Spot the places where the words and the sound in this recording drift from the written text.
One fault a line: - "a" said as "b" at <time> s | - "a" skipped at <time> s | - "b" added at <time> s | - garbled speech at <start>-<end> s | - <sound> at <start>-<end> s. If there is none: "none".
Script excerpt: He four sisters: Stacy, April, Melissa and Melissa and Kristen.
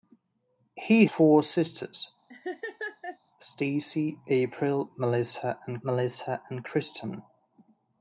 - laugh at 2.3-3.2 s